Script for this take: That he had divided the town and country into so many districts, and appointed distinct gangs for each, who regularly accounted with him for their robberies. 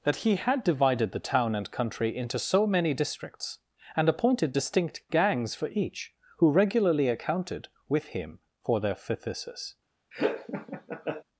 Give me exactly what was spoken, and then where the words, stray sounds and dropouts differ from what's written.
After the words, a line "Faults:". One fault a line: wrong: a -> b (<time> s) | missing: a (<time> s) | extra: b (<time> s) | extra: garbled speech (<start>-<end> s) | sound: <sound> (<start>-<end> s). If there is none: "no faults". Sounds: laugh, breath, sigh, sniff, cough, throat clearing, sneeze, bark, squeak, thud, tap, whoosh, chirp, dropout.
That he had divided the town and country into so many districts, and appointed distinct gangs for each, who regularly accounted with him for their phthisis.
Faults:
wrong: robberies -> phthisis (8.9 s)
sound: laugh (10.1-11.2 s)